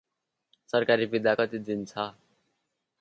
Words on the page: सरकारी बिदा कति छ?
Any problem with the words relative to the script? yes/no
yes